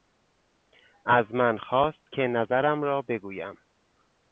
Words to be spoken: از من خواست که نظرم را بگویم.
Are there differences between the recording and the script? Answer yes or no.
no